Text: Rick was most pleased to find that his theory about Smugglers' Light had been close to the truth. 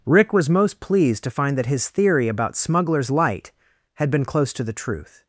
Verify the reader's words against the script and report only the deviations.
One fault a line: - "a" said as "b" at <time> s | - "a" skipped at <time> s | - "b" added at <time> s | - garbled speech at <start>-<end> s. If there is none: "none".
none